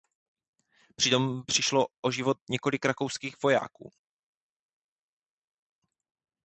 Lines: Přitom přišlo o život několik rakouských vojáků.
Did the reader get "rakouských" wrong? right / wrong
right